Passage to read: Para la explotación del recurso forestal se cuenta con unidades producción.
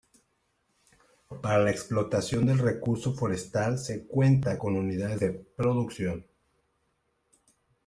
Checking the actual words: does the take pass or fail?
fail